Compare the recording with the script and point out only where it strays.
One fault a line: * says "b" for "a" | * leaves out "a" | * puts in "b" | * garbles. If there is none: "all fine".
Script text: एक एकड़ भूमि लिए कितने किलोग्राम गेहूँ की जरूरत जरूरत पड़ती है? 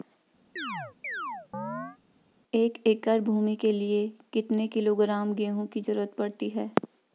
* puts in "के"
* leaves out "जरूरत"